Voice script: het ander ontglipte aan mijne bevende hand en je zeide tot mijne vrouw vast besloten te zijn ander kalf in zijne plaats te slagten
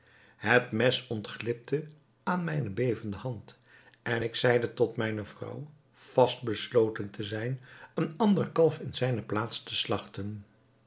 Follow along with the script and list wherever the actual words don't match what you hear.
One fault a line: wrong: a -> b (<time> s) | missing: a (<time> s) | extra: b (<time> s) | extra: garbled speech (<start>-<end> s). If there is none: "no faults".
wrong: ander -> mes (0.7 s)
wrong: je -> ik (4.2 s)
extra: een (7.9 s)